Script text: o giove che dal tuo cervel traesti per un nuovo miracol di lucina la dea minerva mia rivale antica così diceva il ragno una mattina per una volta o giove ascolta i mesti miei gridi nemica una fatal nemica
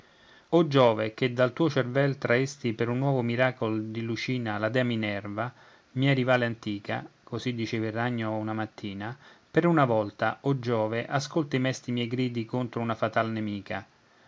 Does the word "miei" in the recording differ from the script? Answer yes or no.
no